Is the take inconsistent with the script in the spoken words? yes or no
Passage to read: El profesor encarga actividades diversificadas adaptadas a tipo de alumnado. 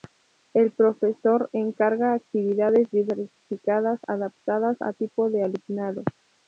no